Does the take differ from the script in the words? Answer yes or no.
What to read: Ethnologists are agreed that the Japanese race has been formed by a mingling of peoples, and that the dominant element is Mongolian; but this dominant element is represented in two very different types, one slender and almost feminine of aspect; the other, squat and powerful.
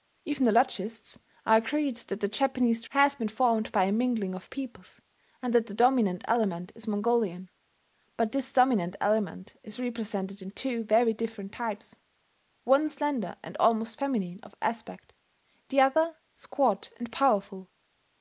yes